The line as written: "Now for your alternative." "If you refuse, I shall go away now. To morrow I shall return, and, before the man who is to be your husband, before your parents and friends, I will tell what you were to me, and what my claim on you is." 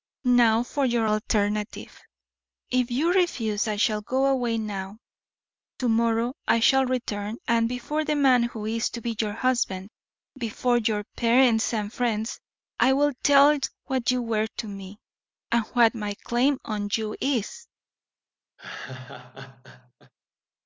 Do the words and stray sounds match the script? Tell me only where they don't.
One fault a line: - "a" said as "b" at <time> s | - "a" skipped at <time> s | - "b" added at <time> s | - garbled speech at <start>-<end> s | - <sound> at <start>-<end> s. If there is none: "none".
- laugh at 18.6-20.1 s